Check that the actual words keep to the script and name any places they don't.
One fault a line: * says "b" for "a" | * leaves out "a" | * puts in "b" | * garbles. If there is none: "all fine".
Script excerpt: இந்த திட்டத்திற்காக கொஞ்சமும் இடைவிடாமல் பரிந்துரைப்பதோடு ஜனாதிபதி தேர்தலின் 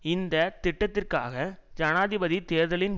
* leaves out "கொஞ்சமும் இடைவிடாமல் பரிந்துரைப்பதோடு"